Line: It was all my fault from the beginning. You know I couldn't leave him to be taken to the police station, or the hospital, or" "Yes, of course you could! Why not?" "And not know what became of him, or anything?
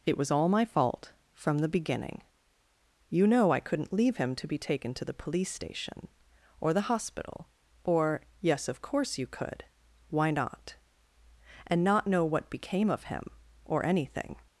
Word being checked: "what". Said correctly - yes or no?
yes